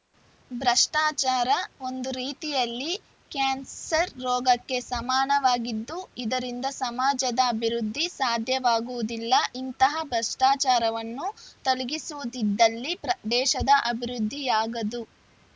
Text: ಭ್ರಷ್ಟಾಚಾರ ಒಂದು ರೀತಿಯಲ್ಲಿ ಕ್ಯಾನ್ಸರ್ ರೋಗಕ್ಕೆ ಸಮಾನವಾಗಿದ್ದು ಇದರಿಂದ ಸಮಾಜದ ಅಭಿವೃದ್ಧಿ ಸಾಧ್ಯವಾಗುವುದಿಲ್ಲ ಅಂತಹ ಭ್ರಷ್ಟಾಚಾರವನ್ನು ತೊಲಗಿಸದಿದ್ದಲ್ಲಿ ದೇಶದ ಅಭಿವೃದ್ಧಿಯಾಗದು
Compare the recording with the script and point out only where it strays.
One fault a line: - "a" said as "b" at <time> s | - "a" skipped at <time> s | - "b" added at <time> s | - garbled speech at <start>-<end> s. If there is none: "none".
- "ಅಂತಹ" said as "ಇಂತಹ" at 9.6 s